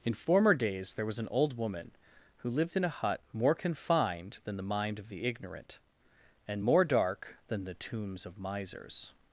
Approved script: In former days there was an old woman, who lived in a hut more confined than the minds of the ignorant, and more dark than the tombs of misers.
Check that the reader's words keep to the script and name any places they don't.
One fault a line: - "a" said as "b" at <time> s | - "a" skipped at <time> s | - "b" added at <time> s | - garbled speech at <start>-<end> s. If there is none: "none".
- "minds" said as "mind" at 4.6 s